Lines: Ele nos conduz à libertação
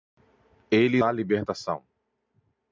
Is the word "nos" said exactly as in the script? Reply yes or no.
no